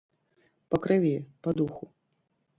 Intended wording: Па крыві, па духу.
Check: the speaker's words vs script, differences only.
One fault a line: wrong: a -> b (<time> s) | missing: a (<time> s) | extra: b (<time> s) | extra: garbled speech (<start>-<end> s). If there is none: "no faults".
no faults